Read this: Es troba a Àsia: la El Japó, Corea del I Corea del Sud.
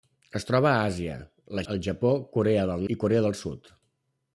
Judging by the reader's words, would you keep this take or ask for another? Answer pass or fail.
pass